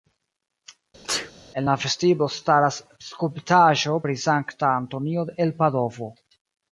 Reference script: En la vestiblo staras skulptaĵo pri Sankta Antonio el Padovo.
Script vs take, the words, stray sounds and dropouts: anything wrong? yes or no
yes